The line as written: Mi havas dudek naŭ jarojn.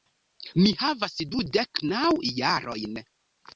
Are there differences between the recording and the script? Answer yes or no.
no